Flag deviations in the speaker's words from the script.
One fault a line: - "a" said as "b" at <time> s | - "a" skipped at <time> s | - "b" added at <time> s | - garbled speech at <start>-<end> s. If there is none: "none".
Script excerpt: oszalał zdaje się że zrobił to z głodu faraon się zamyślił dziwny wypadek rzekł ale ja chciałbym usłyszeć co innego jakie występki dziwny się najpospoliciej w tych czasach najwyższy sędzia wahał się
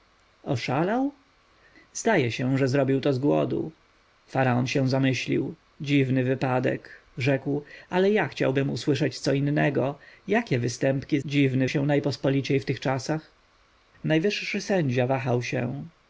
none